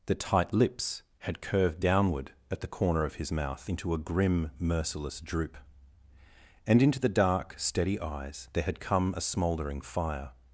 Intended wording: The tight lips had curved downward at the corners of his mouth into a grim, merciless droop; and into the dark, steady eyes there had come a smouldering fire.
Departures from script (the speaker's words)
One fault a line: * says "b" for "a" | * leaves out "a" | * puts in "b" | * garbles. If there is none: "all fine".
* says "corner" for "corners"